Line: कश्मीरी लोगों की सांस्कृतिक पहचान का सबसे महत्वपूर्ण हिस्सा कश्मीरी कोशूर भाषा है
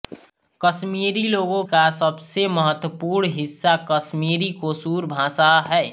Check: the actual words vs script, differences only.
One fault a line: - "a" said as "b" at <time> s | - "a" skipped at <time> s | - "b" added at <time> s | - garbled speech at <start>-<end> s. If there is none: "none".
- "की सांस्कृतिक पहचान" skipped at 1.6 s